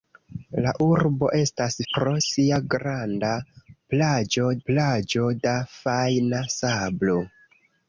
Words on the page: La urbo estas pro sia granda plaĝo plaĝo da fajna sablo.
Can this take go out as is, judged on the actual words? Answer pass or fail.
pass